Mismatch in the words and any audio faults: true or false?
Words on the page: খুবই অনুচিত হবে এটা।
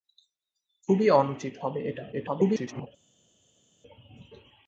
true